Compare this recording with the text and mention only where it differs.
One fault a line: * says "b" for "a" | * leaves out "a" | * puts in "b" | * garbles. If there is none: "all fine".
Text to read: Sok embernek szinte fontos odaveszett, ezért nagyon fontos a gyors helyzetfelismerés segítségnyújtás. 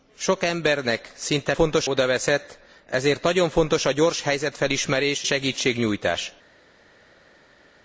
all fine